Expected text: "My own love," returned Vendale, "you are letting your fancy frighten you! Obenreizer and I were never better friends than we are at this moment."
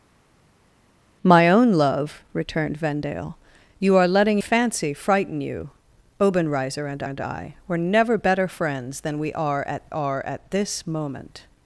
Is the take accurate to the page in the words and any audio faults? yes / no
no